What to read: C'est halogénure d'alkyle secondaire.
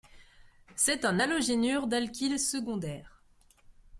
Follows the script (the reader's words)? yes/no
no